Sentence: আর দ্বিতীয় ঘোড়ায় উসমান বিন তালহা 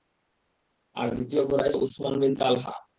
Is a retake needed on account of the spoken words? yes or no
no